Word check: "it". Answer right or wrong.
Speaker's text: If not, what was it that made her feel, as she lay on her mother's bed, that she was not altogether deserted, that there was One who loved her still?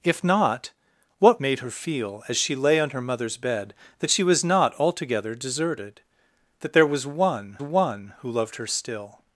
wrong